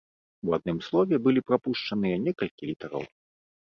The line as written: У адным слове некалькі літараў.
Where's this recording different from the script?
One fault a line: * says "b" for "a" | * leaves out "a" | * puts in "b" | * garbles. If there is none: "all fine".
* puts in "былі прапушчаныя"